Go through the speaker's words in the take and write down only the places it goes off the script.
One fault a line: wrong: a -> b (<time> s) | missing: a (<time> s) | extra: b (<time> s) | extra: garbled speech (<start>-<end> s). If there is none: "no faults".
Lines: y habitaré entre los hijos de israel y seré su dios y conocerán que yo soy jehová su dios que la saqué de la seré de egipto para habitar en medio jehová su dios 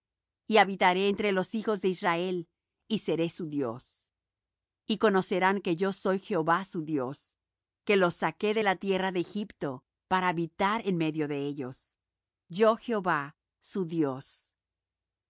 wrong: la -> los (8.0 s)
wrong: seré -> tierra (8.8 s)
extra: de ellos yo (11.3 s)